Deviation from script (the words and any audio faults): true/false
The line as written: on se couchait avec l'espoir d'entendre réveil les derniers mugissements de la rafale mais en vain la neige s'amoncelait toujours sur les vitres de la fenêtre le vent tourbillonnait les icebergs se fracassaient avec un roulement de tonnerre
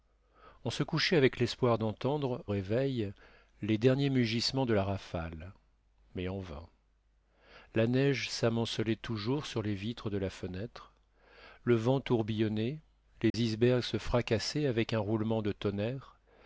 true